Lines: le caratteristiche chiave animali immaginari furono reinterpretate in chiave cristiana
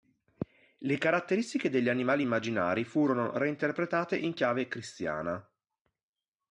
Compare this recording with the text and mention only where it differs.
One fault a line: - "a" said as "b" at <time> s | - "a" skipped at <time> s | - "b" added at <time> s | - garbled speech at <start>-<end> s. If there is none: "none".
- "chiave" said as "degli" at 1.7 s